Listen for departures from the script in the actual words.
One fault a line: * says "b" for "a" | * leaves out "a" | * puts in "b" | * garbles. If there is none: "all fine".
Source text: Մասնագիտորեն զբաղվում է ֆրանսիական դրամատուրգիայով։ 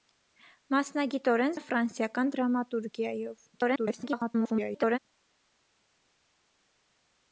* leaves out "զբաղվում"
* garbles